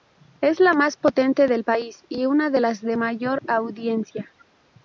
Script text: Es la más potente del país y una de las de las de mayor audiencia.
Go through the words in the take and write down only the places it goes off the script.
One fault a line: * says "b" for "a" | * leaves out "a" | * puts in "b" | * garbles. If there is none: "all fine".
* leaves out "las de"